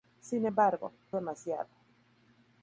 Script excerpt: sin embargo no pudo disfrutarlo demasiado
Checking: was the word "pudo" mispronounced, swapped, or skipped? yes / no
yes